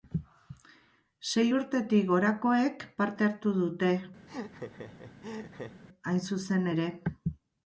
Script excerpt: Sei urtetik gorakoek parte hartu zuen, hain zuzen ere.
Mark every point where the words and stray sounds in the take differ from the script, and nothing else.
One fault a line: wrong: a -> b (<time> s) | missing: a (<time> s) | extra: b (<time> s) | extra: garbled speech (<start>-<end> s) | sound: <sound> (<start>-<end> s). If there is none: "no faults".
wrong: zuen -> dute (3.6 s)
sound: laugh (4.3-5.8 s)